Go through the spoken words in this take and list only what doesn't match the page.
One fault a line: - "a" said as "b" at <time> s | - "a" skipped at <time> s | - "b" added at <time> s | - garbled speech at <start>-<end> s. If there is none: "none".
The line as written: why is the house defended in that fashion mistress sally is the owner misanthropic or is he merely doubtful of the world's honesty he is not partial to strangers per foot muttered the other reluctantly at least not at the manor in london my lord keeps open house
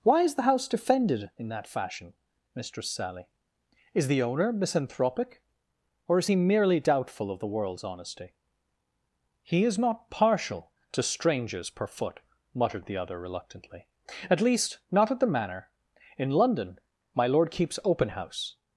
none